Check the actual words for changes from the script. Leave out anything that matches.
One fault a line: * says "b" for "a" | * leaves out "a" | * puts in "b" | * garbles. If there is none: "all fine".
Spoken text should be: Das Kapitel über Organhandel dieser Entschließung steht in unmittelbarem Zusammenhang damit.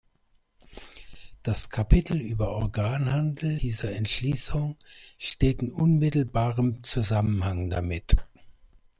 all fine